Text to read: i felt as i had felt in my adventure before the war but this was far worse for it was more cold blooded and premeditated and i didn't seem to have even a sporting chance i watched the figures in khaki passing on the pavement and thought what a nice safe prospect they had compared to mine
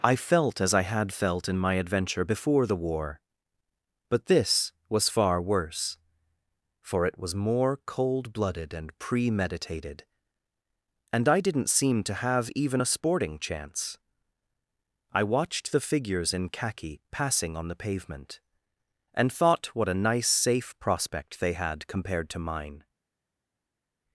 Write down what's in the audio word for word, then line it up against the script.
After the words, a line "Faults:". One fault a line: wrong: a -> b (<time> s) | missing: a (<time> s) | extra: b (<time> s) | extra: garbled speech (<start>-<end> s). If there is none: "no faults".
i felt as i had felt in my adventure before the war but this was far worse for it was more cold blooded and premeditated and i didn't seem to have even a sporting chance i watched the figures in khaki passing on the pavement and thought what a nice safe prospect they had compared to mine
Faults:
no faults